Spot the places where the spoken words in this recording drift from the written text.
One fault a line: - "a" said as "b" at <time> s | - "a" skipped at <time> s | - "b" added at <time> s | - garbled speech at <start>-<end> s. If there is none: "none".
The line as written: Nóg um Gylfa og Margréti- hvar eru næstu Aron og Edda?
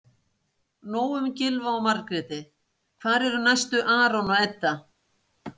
none